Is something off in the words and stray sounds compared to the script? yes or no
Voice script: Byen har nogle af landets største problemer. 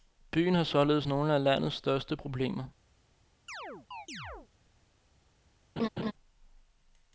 yes